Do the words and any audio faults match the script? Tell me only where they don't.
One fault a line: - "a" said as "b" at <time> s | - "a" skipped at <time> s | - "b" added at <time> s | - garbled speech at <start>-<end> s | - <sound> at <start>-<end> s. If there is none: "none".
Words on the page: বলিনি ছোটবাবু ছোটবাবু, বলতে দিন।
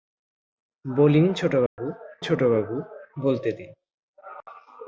- dropout at 1.7-1.8 s